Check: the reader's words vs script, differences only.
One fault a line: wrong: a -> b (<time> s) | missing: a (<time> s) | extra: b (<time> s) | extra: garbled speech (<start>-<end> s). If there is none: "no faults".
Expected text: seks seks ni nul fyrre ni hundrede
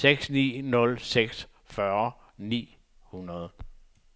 missing: seks (0.3 s)
extra: seks (1.0 s)